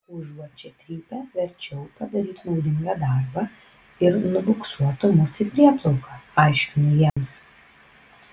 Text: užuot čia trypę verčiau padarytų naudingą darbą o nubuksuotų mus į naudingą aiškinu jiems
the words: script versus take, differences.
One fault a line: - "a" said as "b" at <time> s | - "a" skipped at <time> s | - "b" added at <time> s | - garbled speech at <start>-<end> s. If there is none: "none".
- "o" said as "ir" at 4.1 s
- "naudingą" said as "prieplauką" at 5.6 s